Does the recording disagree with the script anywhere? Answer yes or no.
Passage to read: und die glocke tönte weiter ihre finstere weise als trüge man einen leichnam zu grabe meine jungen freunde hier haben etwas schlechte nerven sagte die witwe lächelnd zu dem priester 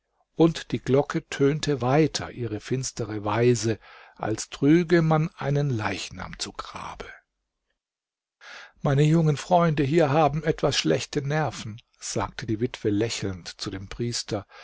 no